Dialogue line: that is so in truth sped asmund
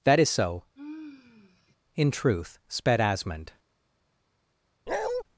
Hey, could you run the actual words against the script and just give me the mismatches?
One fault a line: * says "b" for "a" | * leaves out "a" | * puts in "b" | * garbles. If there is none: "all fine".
all fine